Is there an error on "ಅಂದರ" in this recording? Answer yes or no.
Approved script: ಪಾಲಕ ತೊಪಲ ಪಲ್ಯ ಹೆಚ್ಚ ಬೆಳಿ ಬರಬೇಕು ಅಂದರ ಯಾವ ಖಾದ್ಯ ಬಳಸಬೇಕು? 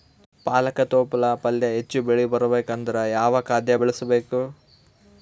no